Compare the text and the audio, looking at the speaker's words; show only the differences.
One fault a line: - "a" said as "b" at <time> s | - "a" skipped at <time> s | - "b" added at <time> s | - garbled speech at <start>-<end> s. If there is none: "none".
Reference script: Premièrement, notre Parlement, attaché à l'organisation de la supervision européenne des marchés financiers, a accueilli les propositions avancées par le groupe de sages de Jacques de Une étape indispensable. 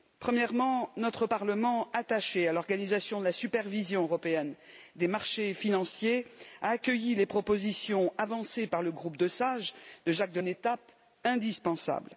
none